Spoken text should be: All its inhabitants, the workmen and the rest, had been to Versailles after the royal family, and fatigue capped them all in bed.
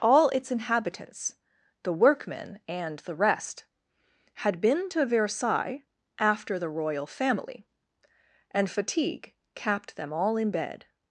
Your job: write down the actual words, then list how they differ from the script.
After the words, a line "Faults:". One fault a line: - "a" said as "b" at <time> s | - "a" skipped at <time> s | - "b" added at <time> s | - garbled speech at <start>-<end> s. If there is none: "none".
All its inhabitants, the workmen and the rest, had been to Versailles after the royal family, and fatigue capped them all in bed.
Faults:
none